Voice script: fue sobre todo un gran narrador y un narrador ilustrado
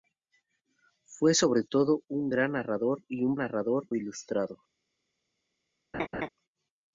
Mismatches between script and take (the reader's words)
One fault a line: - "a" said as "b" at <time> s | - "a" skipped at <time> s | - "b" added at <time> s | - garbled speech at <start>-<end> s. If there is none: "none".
none